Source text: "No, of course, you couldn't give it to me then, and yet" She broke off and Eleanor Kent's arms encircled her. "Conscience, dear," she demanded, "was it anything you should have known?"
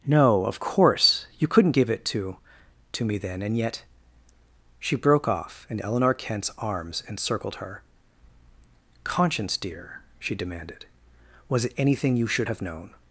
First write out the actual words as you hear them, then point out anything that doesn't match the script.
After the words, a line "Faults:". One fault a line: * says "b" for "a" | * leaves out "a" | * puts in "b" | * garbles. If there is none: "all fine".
"No, of course, you couldn't give it to to me then, and yet" She broke off and Eleanor Kent's arms encircled her. "Conscience, dear," she demanded, "was it anything you should have known?"
Faults:
* puts in "to"